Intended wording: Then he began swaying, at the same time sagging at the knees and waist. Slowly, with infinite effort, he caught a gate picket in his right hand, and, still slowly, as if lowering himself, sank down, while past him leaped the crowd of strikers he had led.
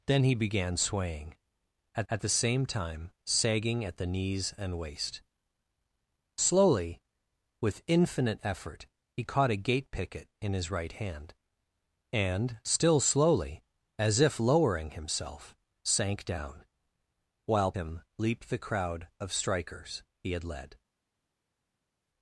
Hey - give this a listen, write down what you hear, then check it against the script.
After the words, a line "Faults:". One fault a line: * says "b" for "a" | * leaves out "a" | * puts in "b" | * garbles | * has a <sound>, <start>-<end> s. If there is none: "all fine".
Then he began swaying, at at the same time sagging at the knees and waist. Slowly, with infinite effort, he caught a gate picket in his right hand, and, still slowly, as if lowering himself, sank down, while him leaped the crowd of strikers he had led.
Faults:
* puts in "at"
* leaves out "past"